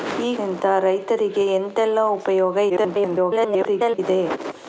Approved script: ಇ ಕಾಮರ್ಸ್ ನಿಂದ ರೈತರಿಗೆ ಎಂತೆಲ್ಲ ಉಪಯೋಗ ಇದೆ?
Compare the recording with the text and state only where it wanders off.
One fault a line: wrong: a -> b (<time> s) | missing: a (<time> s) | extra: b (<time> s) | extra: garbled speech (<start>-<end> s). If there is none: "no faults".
missing: ಕಾಮರ್ಸ್ (0.3 s)
extra: garbled speech (2.7-4.0 s)